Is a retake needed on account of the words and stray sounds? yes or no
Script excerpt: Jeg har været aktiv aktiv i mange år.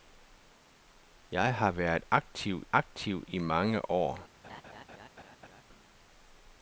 yes